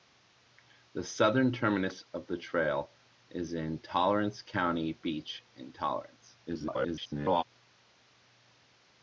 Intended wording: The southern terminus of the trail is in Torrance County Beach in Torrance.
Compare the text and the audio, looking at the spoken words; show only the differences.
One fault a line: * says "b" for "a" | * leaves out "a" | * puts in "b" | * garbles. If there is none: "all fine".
* garbles